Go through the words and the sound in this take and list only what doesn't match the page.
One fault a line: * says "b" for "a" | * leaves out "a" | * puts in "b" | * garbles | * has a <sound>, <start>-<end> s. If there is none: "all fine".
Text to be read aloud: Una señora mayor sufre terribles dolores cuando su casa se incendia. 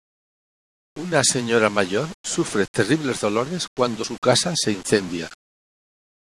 all fine